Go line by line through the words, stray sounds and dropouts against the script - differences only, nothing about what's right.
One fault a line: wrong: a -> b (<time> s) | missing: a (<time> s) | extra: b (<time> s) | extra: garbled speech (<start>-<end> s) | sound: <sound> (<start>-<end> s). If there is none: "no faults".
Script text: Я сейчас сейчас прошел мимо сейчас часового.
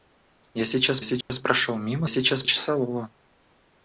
sound: dropout (1.2-1.3 s)